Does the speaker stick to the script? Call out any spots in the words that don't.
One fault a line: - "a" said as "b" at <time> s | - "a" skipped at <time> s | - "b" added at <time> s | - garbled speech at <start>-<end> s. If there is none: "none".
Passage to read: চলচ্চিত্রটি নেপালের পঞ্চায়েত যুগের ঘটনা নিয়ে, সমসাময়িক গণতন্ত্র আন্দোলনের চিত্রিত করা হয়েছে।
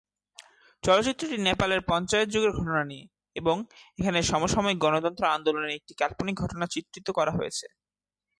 - "এবং এখানে" added at 3.4 s
- "একটি কাল্পনিক ঘটনা" added at 5.8 s